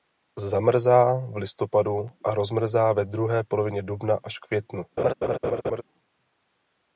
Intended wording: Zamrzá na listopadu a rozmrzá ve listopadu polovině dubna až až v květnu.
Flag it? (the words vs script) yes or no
yes